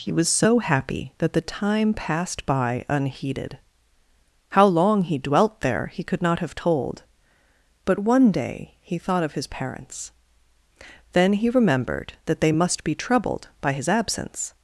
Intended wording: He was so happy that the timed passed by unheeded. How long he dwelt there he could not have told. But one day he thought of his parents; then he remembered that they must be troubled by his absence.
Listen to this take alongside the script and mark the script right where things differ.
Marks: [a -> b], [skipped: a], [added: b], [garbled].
He was so happy that the [timed -> time] passed by unheeded. How long he dwelt there he could not have told. But one day he thought of his parents; then he remembered that they must be troubled by his absence.